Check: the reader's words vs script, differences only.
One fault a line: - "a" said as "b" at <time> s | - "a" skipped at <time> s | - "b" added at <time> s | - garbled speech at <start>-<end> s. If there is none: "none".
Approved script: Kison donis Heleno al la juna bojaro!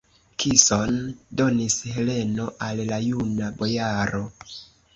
none